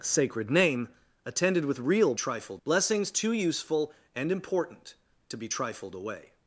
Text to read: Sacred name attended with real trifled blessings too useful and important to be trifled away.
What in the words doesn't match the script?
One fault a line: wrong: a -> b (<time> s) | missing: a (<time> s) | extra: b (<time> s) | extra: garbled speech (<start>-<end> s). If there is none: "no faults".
no faults